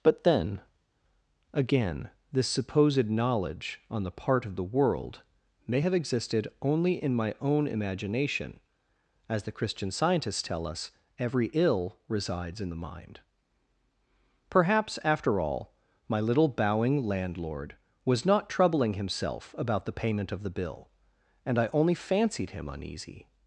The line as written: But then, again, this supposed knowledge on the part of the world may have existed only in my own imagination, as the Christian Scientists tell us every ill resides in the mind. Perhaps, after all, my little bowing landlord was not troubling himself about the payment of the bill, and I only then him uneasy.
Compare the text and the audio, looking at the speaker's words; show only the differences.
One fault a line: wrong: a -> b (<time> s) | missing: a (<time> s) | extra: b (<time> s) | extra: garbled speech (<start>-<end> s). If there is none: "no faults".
wrong: then -> fancied (21.9 s)